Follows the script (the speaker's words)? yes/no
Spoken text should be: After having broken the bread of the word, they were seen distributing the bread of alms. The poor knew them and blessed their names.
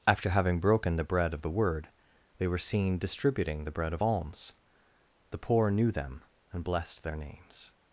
yes